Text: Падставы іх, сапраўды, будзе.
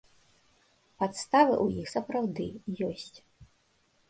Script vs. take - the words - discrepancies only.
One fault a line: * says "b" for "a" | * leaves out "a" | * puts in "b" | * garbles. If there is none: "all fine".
* puts in "ў"
* says "ёсць" for "будзе"